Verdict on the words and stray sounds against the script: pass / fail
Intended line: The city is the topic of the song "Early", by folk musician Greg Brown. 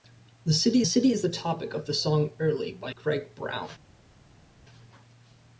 fail